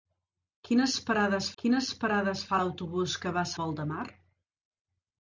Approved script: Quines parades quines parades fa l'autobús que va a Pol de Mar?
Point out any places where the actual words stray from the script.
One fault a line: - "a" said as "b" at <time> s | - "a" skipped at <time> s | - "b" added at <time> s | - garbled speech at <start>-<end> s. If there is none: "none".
none